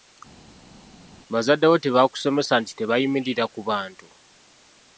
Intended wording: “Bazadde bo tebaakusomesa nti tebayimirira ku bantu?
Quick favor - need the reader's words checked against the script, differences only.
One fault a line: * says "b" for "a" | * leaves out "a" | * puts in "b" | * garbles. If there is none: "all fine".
all fine